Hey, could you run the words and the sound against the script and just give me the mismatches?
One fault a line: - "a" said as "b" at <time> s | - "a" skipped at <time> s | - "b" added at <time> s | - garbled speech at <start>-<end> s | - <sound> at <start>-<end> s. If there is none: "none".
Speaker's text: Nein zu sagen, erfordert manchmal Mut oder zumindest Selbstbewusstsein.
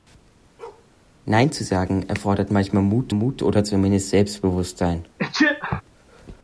- bark at 0.6-0.9 s
- "Mut" added at 3.1 s
- sneeze at 5.2-5.8 s